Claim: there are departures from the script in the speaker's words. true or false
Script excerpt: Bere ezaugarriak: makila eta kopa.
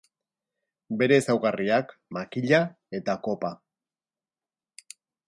false